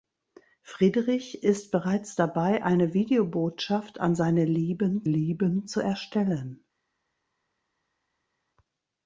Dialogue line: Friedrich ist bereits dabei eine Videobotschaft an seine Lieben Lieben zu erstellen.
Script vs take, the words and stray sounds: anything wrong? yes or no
no